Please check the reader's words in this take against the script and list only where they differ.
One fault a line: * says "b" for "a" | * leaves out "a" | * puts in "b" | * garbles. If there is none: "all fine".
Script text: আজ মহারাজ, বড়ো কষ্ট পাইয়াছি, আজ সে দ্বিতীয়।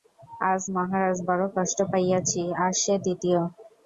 all fine